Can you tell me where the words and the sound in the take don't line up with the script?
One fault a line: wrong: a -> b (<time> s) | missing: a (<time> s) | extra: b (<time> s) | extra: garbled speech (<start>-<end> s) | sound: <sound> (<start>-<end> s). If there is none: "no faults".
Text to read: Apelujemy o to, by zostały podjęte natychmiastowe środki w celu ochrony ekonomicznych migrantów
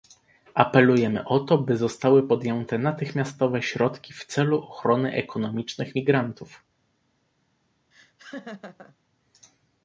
sound: laugh (7.9-9.0 s)